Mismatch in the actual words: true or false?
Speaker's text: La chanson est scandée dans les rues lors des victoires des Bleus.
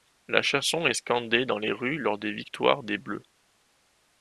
false